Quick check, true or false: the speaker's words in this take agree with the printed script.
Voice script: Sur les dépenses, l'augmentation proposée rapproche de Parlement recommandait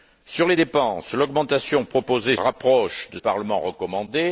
true